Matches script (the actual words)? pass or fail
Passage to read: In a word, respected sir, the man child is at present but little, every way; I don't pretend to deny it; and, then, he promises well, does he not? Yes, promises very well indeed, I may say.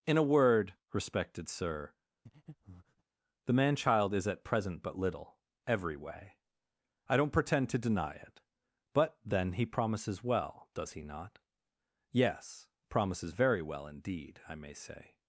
fail